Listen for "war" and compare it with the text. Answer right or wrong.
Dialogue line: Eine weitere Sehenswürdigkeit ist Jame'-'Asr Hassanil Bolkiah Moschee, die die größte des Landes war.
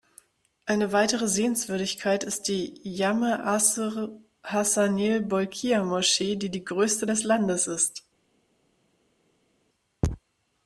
wrong